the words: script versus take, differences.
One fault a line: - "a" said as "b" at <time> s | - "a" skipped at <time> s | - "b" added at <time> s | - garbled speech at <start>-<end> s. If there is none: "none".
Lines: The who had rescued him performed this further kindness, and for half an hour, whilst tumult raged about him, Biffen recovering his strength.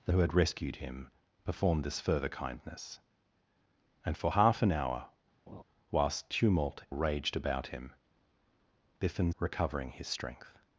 none